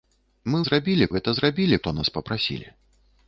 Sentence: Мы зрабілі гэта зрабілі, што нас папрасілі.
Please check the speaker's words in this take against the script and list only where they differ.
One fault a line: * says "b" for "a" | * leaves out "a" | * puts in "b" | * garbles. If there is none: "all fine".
all fine